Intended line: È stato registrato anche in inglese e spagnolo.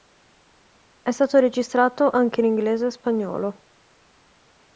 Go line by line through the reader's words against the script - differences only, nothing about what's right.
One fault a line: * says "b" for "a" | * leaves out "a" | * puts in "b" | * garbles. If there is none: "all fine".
all fine